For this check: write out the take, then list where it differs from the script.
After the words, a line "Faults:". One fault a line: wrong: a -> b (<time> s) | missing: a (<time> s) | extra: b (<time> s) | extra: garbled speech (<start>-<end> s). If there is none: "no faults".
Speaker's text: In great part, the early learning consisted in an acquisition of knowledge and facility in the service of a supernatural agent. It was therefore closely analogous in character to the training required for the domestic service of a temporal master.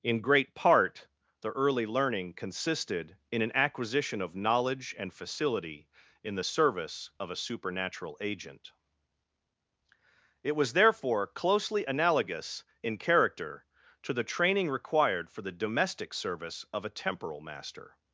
In great part, the early learning consisted in an acquisition of knowledge and facility in the service of a supernatural agent. It was therefore closely analogous in character to the training required for the domestic service of a temporal master.
Faults:
no faults